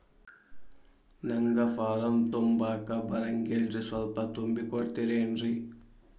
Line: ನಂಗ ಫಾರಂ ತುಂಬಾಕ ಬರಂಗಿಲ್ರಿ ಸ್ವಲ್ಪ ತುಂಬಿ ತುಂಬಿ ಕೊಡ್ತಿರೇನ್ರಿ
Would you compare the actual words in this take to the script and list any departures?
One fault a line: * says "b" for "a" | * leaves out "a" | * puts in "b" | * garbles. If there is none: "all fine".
* leaves out "ತುಂಬಿ"